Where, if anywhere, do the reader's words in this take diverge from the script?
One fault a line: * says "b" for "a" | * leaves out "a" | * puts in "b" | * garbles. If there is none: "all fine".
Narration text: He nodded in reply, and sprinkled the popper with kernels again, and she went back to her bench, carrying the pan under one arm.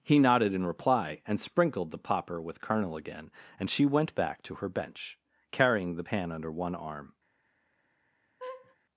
* says "kernel" for "kernels"